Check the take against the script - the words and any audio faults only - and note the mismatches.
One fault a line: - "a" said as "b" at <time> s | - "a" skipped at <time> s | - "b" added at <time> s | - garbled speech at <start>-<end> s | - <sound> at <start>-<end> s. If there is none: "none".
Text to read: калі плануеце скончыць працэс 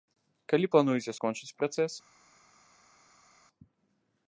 none